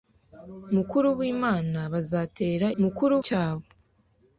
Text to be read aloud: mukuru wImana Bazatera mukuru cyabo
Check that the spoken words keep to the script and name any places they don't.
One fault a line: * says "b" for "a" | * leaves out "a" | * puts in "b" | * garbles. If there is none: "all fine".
all fine